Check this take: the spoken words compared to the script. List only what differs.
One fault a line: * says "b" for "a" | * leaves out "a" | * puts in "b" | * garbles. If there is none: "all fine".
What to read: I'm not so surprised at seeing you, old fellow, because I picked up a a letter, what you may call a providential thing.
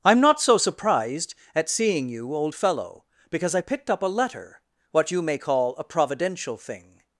* leaves out "a"